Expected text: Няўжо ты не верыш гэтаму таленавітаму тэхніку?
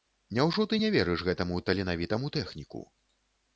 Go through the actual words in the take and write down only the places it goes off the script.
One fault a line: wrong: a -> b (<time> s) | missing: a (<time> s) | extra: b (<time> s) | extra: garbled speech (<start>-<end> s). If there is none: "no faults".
no faults